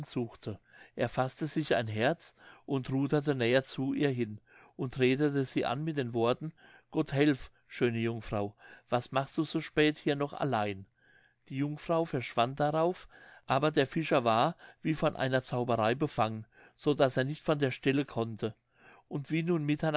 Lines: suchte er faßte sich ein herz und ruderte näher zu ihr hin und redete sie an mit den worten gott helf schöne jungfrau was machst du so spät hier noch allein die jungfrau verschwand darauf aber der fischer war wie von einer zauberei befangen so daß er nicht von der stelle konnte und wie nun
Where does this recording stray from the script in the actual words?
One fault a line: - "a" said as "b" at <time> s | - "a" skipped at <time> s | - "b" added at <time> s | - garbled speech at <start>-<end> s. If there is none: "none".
none